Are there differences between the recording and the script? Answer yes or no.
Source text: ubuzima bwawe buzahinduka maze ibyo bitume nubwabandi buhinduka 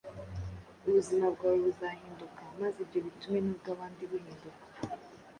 no